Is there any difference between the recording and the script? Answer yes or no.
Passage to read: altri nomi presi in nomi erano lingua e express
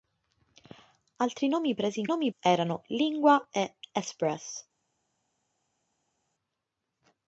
no